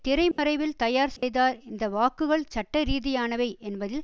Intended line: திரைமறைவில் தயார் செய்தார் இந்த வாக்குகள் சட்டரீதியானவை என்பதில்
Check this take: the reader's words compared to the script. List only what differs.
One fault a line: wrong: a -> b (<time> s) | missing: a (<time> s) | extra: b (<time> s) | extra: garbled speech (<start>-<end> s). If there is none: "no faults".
no faults